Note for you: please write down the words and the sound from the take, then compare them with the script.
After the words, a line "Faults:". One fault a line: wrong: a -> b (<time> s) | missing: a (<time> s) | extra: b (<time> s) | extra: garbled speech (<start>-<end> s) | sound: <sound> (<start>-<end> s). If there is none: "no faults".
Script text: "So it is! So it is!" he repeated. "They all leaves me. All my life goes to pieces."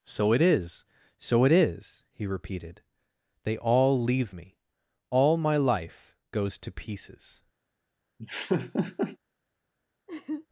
"So it is! So it is!" he repeated. "They all leave me. All my life goes to pieces."
Faults:
wrong: leaves -> leave (4.0 s)
sound: laugh (8.2-9.2 s)
sound: laugh (10.1-10.5 s)